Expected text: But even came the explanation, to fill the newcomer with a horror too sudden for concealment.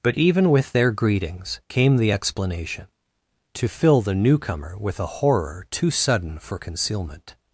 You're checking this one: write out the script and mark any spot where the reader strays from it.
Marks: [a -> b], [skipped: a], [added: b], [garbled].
But even [added: with their greetings] came the explanation, to fill the newcomer with a horror too sudden for concealment.